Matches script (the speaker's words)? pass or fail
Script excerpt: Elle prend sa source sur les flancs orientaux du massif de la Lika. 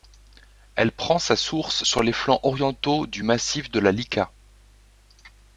pass